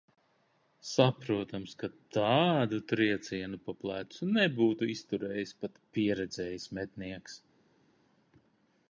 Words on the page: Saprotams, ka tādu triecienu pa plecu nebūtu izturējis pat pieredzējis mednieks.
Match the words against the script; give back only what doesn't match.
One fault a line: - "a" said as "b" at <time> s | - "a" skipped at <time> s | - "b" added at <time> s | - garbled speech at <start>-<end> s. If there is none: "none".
none